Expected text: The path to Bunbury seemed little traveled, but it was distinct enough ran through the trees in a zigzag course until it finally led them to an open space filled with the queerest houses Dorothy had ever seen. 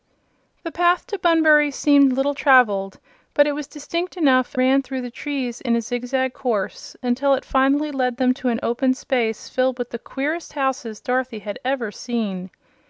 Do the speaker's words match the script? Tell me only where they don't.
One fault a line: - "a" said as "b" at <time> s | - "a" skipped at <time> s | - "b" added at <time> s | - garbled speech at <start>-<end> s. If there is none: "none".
none